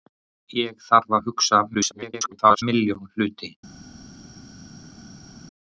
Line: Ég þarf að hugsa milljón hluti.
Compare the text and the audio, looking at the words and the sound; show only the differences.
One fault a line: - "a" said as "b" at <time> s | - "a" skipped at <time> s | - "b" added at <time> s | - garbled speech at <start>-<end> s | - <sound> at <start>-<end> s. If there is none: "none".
- garbled speech at 1.7-2.6 s